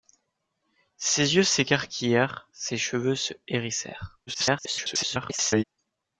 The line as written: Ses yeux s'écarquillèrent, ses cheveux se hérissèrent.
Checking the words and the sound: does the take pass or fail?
fail